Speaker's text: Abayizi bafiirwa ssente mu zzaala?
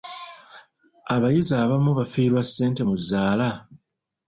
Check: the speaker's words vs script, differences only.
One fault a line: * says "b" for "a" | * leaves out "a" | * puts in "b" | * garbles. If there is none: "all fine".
* puts in "abamu"